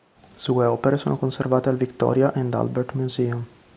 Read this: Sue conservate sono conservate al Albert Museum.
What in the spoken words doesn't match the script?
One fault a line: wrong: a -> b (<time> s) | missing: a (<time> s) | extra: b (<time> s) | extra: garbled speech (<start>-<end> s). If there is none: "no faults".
wrong: conservate -> opere (0.7 s)
extra: Victoria and (1.8 s)